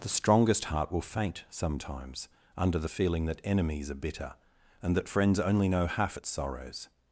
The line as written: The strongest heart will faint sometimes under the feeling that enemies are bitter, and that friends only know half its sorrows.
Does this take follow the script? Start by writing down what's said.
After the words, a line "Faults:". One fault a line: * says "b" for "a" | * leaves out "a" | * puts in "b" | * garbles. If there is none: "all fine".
The strongest heart will faint sometimes under the feeling that enemies are bitter, and that friends only know half its sorrows.
Faults:
all fine